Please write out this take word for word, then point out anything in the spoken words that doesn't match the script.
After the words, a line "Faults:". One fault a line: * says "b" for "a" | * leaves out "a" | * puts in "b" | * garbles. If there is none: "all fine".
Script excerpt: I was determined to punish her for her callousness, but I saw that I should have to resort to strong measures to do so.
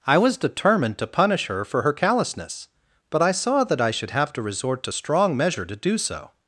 I was determined to punish her for her callousness, but I saw that I should have to resort to strong measure to do so.
Faults:
* says "measure" for "measures"